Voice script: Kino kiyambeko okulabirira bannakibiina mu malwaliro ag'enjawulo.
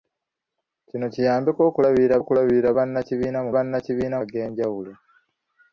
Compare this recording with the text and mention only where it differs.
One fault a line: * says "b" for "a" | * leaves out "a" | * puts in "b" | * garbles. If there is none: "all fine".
* puts in "okulabirira"
* says "bannakibiina" for "malwaliro"